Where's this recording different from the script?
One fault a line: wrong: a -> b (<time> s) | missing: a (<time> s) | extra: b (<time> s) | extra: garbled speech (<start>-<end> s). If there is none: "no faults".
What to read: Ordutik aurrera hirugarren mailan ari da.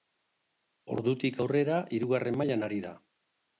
no faults